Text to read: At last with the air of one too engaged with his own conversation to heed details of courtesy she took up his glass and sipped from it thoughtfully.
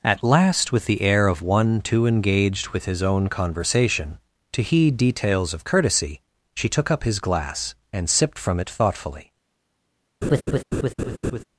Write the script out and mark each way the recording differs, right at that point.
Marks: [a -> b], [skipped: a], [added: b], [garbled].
At last with the air of one too engaged with his own conversation to heed details of courtesy she took up his glass and sipped from it thoughtfully.